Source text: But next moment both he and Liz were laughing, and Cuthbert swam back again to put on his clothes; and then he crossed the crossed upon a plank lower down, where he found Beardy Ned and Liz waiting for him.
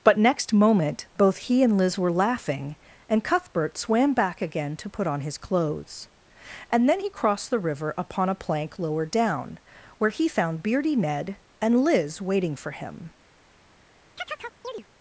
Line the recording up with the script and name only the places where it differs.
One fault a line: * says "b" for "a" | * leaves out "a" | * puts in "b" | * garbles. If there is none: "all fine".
* says "river" for "crossed"